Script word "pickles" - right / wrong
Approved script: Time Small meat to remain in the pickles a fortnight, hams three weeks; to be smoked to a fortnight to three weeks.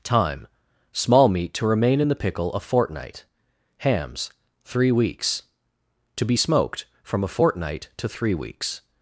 wrong